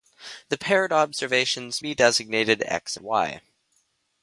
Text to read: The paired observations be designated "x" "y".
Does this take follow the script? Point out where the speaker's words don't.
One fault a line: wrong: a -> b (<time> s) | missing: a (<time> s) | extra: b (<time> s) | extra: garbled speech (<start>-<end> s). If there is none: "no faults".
no faults